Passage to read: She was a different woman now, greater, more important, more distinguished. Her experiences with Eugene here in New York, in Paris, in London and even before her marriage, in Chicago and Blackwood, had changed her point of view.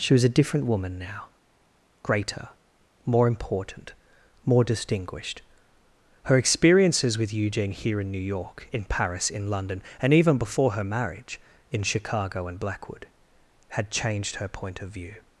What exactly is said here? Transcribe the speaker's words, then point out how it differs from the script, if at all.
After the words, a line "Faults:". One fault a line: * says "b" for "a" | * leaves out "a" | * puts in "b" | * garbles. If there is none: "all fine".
She was a different woman now, greater, more important, more distinguished. Her experiences with Eugene here in New York, in Paris, in London and even before her marriage, in Chicago and Blackwood, had changed her point of view.
Faults:
all fine